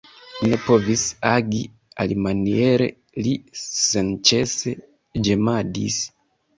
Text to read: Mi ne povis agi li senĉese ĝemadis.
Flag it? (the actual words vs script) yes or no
yes